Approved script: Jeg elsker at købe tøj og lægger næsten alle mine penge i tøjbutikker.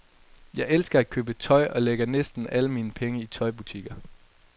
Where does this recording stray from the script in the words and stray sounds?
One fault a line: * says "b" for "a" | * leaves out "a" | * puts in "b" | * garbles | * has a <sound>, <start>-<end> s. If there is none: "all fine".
all fine